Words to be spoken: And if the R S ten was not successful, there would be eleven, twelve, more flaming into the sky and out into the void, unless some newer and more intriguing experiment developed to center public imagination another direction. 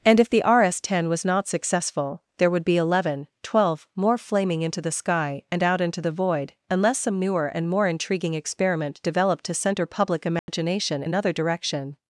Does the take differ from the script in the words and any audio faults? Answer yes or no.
yes